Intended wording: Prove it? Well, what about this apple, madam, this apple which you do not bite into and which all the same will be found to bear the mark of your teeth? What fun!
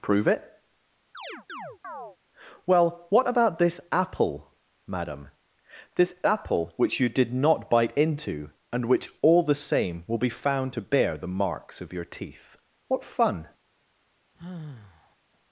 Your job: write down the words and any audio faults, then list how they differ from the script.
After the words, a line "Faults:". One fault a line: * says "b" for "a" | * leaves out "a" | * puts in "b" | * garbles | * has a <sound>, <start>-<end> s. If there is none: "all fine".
Prove it? Well, what about this apple, madam, this apple which you did not bite into and which all the same will be found to bear the marks of your teeth? What fun!
Faults:
* has a chirp, 1.1-2.2 s
* says "did" for "do"
* says "marks" for "mark"
* has a sigh, 14.3-15.2 s